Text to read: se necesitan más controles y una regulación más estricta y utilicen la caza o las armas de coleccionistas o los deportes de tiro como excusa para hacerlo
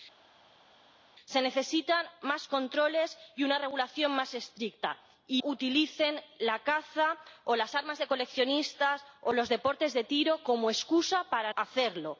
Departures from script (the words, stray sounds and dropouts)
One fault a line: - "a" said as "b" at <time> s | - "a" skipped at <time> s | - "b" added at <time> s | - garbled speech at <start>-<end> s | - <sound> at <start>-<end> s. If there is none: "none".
none